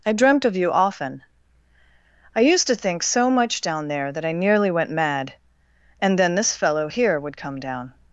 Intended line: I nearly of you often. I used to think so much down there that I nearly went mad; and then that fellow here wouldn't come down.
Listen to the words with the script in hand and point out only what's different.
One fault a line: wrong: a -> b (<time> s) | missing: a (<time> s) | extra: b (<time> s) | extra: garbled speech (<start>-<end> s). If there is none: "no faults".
wrong: nearly -> dreamt (0.1 s)
wrong: that -> this (6.3 s)
wrong: wouldn't -> would (7.2 s)